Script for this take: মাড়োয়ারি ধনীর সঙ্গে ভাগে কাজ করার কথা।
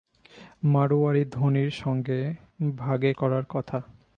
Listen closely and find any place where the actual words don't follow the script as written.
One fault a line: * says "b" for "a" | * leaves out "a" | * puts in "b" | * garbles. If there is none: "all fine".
* leaves out "কাজ"